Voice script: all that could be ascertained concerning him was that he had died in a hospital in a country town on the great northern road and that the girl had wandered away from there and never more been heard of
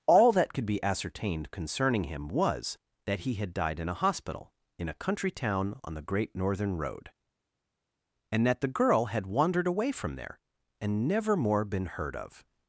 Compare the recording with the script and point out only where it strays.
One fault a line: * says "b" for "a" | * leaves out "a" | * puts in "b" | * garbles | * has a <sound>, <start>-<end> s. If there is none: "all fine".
all fine